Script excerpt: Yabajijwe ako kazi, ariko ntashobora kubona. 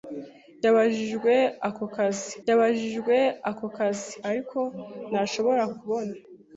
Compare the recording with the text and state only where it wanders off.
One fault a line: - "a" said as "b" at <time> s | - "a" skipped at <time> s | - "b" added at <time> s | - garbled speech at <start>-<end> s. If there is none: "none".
- "yabajijwe ako kazi" added at 2.5 s